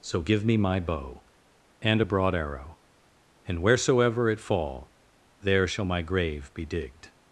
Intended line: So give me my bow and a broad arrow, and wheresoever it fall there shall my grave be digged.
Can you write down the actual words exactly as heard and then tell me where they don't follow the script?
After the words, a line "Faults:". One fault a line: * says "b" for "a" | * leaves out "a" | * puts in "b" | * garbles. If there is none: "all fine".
So give me my bow and a broad arrow, and wheresoever it fall there shall my grave be digged.
Faults:
all fine